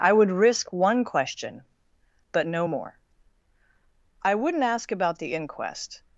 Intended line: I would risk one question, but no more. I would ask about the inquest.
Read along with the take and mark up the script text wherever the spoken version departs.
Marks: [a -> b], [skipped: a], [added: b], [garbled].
I would risk one question, but no more. I [would -> wouldn't] ask about the inquest.